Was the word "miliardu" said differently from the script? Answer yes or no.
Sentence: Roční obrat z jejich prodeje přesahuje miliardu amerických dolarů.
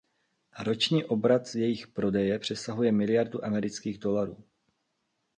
no